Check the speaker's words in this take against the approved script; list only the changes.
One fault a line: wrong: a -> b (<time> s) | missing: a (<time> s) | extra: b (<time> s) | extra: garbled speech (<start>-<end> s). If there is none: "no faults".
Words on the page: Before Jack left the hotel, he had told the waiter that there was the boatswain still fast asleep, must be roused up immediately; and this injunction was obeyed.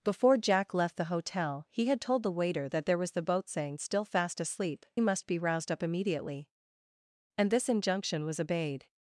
no faults